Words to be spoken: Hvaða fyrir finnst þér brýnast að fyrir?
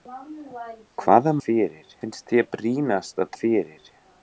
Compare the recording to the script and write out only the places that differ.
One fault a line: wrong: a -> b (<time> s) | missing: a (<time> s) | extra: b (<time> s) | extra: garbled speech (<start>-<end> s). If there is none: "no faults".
no faults